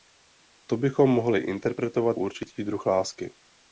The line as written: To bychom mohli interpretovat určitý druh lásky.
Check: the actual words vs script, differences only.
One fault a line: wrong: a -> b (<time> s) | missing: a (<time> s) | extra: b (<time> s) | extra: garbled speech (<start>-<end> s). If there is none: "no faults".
no faults